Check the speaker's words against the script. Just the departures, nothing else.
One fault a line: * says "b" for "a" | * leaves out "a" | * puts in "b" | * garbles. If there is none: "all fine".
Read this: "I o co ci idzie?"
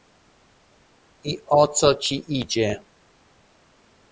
all fine